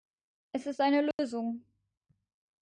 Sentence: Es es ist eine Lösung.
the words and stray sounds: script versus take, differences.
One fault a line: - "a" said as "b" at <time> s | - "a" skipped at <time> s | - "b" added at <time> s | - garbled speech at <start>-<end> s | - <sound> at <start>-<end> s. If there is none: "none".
- "es" skipped at 0.7 s
- dropout at 1.1-1.2 s